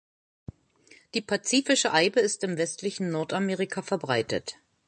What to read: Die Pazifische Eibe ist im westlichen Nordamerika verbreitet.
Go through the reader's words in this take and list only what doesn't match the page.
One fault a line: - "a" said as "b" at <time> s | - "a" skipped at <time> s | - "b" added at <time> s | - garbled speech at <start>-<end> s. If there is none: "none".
none